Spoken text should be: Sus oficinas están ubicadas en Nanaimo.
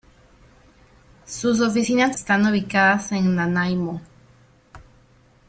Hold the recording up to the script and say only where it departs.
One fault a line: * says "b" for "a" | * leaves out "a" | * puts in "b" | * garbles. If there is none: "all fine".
all fine